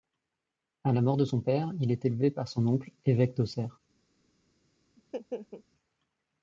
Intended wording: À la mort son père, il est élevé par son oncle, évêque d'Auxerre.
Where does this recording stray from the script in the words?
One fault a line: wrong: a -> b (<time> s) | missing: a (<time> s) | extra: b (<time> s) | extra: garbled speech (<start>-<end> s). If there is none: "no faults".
extra: de (1.1 s)